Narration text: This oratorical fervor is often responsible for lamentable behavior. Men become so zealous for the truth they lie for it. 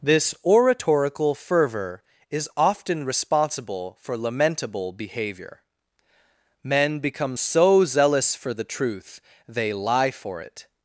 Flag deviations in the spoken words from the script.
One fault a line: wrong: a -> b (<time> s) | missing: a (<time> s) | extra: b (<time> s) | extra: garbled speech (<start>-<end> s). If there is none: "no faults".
no faults